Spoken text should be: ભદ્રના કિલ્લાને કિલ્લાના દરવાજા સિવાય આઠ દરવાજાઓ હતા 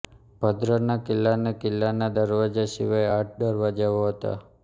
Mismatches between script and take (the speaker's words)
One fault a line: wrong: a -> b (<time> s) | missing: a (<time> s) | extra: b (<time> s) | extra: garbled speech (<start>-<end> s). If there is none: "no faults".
no faults